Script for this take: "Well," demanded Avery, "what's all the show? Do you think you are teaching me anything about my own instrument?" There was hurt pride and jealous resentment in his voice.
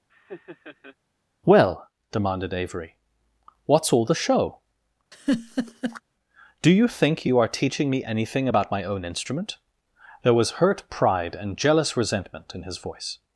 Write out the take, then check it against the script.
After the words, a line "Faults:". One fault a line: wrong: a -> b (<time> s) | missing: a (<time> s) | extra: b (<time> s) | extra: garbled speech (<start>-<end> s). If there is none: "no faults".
"Well," demanded Avery, "what's all the show? Do you think you are teaching me anything about my own instrument?" There was hurt pride and jealous resentment in his voice.
Faults:
no faults